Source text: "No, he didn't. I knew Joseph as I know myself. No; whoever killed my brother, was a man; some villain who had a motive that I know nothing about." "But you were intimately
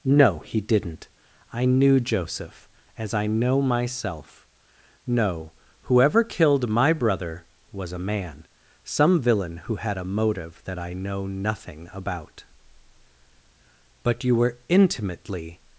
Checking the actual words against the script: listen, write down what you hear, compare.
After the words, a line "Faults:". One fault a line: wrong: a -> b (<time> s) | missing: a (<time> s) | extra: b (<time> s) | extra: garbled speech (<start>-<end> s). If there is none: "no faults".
"No, he didn't. I knew Joseph as I know myself. No; whoever killed my brother, was a man; some villain who had a motive that I know nothing about." "But you were intimately
Faults:
no faults